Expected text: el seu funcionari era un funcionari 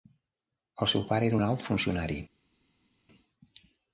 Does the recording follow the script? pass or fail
fail